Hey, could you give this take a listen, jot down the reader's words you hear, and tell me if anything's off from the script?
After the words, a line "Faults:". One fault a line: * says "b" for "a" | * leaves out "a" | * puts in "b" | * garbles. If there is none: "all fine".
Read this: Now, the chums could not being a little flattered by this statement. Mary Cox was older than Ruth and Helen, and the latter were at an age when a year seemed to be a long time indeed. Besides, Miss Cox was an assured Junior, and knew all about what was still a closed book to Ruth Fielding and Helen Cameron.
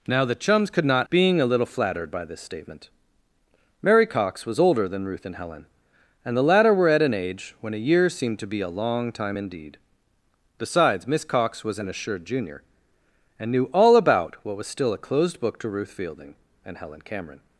Now, the chums could not being a little flattered by this statement. Mary Cox was older than Ruth and Helen, and the latter were at an age when a year seemed to be a long time indeed. Besides, Miss Cox was an assured Junior, and knew all about what was still a closed book to Ruth Fielding and Helen Cameron.
Faults:
all fine